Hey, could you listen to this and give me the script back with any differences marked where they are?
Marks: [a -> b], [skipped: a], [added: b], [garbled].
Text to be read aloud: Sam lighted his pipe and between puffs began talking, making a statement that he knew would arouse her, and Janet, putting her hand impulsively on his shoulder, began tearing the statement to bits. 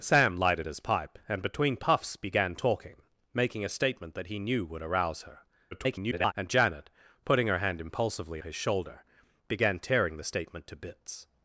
Sam lighted his pipe and between puffs began talking, making a statement that he knew would arouse her, [garbled] and Janet, putting her hand impulsively [skipped: on] his shoulder, began tearing the statement to bits.